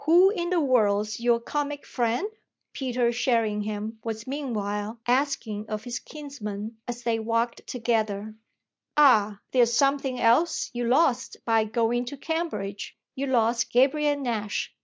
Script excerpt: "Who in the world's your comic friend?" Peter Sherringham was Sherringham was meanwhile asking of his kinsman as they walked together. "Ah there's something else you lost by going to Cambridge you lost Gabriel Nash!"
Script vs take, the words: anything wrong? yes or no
yes